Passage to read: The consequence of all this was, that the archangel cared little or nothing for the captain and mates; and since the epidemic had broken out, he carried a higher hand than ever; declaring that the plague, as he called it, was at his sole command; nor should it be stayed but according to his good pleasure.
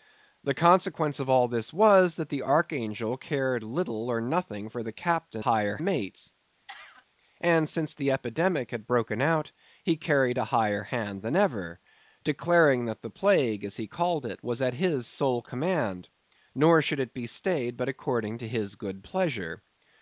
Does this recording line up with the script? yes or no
no